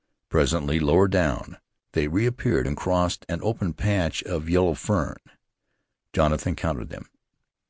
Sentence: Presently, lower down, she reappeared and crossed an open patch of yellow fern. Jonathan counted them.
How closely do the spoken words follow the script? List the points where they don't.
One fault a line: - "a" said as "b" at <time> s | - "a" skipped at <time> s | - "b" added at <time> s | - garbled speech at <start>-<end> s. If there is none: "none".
- "she" said as "they" at 1.9 s